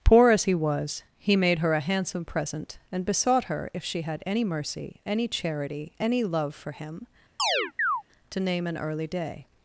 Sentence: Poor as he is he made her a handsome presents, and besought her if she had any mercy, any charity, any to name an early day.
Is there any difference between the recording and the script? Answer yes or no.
yes